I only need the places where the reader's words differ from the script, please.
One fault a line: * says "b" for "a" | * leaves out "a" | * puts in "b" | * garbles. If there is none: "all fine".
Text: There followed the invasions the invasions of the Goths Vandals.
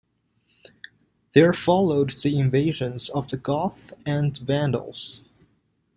* leaves out "the invasions"
* puts in "and"